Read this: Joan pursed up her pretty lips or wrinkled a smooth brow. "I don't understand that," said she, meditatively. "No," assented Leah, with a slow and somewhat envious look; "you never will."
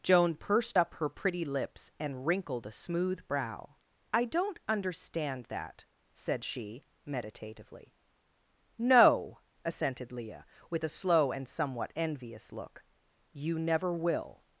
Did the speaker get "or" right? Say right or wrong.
wrong